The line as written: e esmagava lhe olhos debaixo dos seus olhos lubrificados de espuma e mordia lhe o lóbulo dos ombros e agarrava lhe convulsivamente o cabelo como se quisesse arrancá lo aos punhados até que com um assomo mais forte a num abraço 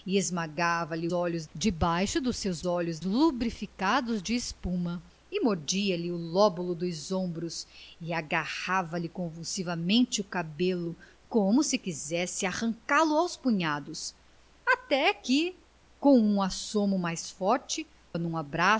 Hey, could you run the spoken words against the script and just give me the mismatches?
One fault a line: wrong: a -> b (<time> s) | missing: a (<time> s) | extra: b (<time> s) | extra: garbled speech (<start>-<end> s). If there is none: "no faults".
no faults